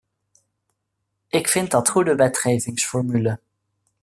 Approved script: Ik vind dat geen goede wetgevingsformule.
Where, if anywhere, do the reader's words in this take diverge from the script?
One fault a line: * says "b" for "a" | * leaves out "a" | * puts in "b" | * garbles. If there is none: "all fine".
* leaves out "geen"